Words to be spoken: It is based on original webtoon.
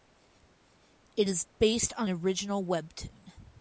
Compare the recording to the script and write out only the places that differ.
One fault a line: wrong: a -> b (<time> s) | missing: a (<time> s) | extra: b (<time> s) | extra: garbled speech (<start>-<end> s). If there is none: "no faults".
no faults